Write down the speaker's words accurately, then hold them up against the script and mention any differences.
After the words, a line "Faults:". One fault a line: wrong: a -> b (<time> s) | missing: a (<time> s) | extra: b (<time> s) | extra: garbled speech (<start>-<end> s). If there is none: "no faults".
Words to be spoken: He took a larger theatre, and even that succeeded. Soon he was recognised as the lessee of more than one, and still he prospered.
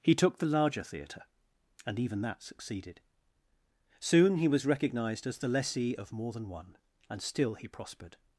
He took the larger theatre, and even that succeeded. Soon he was recognised as the lessee of more than one, and still he prospered.
Faults:
wrong: a -> the (0.4 s)